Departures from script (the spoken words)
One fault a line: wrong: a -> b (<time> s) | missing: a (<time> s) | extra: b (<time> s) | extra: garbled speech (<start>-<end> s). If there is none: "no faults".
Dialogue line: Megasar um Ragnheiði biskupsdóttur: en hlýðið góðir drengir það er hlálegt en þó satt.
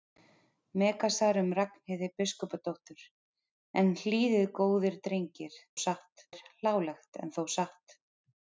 wrong: það -> satt (5.9 s)